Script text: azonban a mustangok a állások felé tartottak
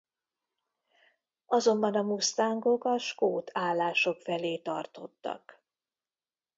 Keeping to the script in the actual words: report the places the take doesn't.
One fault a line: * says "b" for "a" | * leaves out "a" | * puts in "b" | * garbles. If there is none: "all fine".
* puts in "skót"